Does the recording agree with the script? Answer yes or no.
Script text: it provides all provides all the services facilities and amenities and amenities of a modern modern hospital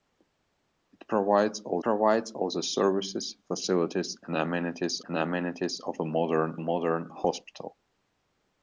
yes